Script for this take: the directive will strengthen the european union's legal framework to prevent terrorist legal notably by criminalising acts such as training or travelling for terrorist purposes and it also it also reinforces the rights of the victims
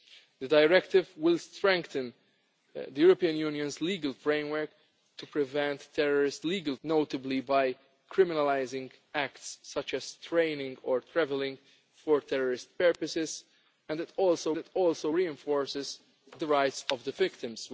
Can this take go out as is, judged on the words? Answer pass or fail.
pass